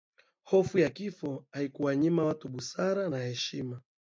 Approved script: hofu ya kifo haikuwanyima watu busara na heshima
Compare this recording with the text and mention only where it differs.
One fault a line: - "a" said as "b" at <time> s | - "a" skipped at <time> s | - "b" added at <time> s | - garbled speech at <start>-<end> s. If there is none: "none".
none